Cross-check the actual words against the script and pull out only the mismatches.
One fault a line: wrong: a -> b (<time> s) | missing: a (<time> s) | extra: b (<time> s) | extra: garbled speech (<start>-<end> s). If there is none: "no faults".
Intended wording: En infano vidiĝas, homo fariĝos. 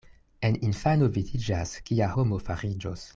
extra: kia (1.9 s)